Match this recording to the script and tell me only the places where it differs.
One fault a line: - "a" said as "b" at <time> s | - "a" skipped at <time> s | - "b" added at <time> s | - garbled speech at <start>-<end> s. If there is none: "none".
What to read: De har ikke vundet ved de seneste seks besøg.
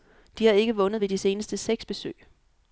none